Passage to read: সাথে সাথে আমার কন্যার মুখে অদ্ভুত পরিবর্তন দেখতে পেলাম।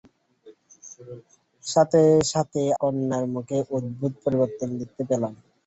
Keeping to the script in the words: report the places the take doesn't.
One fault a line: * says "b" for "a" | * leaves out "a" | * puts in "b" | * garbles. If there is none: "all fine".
* leaves out "আমার"